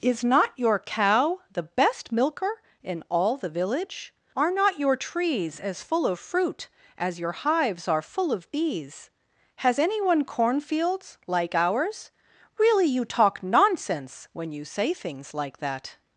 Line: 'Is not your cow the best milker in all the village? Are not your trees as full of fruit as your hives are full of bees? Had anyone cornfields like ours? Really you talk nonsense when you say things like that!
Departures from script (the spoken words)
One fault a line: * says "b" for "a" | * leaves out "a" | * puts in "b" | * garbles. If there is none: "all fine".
* says "Has" for "Had"